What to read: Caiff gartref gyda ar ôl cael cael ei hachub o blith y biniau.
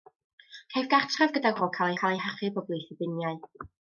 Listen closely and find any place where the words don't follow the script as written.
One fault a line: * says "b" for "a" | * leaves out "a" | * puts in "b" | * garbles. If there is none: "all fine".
all fine